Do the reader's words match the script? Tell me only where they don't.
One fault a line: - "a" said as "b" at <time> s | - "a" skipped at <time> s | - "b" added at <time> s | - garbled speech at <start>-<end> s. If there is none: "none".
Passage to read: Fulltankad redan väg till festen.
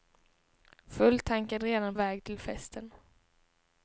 none